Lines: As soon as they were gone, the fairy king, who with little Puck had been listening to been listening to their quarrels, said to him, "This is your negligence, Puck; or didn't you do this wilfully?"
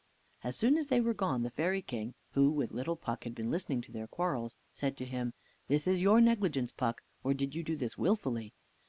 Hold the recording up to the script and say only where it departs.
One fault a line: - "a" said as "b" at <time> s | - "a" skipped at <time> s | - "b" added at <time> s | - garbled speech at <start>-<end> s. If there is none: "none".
- "been listening to" skipped at 3.9 s
- "didn't" said as "did" at 7.3 s